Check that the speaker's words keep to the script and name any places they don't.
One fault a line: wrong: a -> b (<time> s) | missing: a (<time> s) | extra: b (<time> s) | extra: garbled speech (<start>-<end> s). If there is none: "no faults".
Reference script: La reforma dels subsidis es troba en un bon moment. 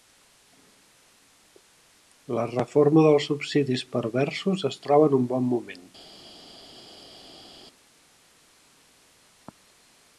extra: perversos (4.0 s)